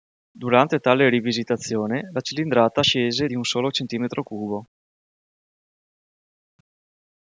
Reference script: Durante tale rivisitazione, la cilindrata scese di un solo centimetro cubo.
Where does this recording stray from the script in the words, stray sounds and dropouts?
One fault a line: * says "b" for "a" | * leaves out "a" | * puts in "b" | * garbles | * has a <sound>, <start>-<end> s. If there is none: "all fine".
all fine